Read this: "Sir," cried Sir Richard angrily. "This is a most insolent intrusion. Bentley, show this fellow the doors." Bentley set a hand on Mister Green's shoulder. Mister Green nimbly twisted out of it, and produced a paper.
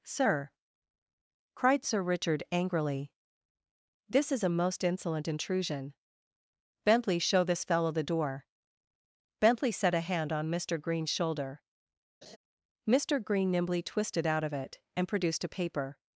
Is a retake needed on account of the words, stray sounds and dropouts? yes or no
yes